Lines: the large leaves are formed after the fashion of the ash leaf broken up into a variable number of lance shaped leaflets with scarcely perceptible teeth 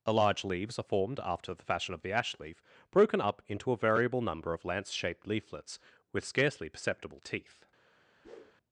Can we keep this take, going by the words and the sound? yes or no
no